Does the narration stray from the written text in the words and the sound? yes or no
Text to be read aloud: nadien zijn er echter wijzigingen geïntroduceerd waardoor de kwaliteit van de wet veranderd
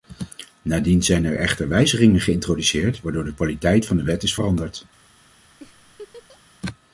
yes